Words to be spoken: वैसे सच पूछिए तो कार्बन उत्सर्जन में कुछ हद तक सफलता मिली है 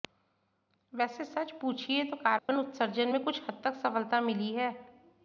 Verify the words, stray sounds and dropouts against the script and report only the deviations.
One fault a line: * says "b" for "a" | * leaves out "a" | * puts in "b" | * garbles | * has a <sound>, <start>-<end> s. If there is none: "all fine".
* has a dropout, 2.4-2.5 s